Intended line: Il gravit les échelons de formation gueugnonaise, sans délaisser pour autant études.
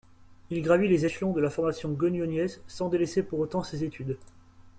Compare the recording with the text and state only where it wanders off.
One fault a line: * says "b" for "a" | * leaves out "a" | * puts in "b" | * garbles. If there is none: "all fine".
* puts in "la"
* puts in "ses"